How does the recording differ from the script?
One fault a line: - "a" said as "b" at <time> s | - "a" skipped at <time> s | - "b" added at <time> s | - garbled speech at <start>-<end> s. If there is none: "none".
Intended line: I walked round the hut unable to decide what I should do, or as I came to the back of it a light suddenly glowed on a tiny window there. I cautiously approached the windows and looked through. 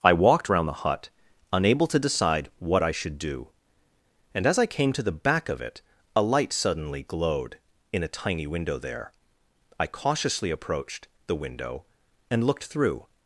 - "or" said as "and" at 4.3 s
- "on" said as "in" at 7.9 s
- "windows" said as "window" at 11.3 s